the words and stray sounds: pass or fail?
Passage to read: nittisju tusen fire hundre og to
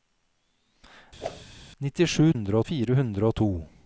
fail